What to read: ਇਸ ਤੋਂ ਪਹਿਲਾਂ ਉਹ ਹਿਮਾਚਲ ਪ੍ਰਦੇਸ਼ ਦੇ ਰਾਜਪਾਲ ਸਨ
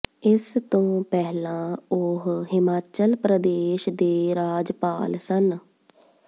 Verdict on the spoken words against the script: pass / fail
pass